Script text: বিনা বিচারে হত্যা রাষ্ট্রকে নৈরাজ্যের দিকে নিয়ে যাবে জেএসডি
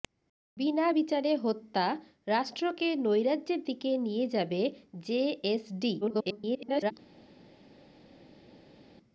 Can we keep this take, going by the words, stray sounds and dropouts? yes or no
no